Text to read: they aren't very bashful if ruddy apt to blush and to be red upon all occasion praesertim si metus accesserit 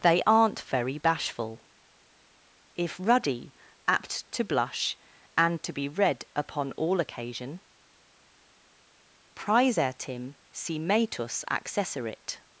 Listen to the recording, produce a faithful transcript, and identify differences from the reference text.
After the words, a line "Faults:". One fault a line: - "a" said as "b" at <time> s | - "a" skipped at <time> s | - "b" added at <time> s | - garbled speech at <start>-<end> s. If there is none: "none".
they aren't very bashful if ruddy apt to blush and to be red upon all occasion praesertim si metus accesserit
Faults:
none